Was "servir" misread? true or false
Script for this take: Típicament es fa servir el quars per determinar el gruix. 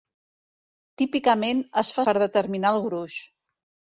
true